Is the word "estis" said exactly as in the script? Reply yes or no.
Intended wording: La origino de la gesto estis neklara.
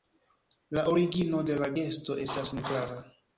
no